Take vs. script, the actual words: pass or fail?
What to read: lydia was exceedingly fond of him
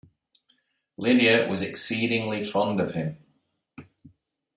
pass